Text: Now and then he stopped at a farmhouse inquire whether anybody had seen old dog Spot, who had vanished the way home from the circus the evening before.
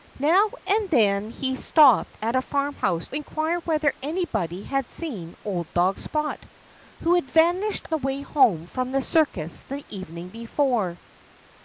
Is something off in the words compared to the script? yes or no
no